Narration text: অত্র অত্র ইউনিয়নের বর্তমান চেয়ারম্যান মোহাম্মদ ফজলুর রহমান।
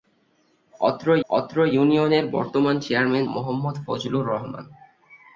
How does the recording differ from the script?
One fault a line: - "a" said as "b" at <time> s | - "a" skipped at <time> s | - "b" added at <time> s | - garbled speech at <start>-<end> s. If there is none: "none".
none